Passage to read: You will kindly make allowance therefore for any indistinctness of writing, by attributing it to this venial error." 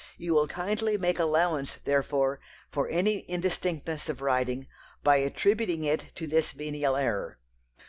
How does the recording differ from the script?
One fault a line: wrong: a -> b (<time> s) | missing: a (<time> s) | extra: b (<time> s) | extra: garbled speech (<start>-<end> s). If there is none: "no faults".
no faults